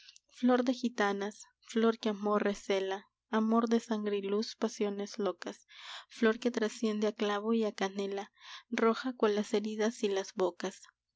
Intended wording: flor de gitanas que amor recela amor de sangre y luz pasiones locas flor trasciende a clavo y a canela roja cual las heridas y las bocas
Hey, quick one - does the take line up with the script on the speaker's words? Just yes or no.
no